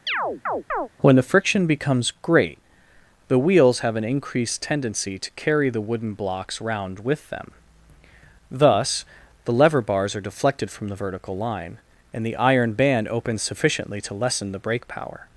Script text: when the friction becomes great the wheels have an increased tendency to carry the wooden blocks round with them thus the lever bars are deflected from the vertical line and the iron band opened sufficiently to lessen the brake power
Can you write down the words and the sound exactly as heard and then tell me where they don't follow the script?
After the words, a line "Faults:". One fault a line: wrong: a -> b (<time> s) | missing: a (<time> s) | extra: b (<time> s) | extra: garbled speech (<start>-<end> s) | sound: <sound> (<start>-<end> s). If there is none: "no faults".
when the friction becomes great the wheels have an increased tendency to carry the wooden blocks round with them thus the lever bars are deflected from the vertical line and the iron band opens sufficiently to lessen the brake power
Faults:
sound: chirp (0.1-0.9 s)
wrong: opened -> opens (13.1 s)